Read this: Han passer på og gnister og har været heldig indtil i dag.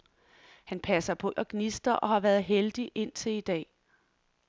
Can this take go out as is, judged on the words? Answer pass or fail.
pass